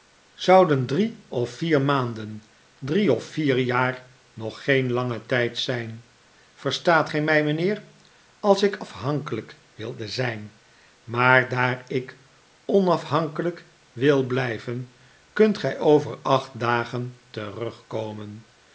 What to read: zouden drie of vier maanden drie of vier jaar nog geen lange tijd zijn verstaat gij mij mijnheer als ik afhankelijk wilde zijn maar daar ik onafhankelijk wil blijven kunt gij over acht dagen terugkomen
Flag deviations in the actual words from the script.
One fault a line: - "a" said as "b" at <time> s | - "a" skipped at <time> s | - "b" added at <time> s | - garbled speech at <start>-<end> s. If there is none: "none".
none